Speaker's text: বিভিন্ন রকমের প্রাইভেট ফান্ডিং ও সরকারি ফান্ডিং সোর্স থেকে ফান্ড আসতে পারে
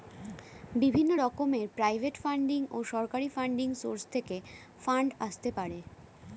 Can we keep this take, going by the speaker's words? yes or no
yes